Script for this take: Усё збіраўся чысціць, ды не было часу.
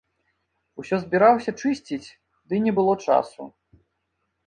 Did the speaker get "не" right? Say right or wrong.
right